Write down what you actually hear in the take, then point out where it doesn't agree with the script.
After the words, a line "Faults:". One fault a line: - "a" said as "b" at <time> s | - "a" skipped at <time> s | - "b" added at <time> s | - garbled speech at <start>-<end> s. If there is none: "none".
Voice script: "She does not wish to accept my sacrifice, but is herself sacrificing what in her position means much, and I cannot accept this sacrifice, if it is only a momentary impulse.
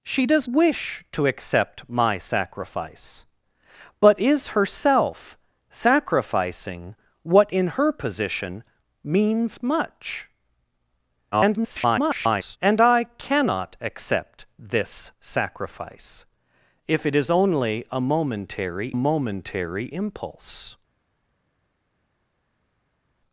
"She does wish to accept my sacrifice, but is herself sacrificing what in her position means much, [garbled] and I cannot accept this sacrifice, if it is only a momentary momentary impulse.
Faults:
- "not" skipped at 0.5 s
- garbled speech at 11.3-12.6 s
- "momentary" added at 18.9 s